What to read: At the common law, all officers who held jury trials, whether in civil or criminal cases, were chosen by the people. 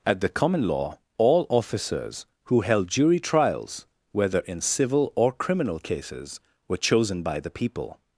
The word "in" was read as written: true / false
true